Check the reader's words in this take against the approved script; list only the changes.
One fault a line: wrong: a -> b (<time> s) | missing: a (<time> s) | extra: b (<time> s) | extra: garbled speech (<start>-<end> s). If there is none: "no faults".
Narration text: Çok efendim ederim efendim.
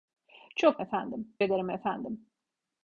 no faults